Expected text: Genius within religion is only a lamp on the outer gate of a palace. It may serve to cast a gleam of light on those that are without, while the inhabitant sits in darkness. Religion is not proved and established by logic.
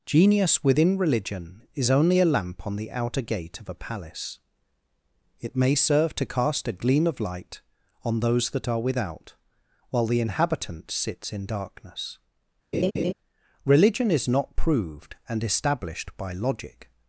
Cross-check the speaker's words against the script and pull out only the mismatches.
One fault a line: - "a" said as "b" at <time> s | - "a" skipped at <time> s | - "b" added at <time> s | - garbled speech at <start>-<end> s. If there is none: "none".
none